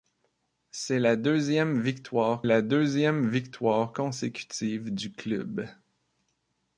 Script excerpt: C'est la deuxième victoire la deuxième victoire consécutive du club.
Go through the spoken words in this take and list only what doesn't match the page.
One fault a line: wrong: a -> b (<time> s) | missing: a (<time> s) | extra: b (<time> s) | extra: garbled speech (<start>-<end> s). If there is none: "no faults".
no faults